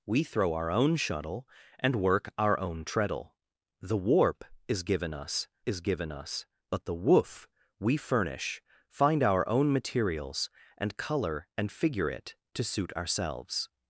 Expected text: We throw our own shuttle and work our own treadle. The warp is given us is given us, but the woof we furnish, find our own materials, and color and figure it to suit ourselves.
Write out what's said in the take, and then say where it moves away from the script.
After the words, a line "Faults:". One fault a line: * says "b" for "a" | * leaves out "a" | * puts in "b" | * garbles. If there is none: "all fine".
We throw our own shuttle and work our own treadle. The warp is given us is given us, but the woof we furnish, find our own materials, and color and figure it to suit ourselves.
Faults:
all fine